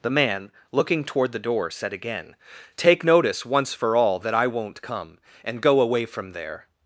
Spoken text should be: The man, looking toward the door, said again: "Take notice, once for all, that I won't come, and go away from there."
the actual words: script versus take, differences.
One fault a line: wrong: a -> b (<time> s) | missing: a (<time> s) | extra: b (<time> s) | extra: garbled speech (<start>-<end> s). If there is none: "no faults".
no faults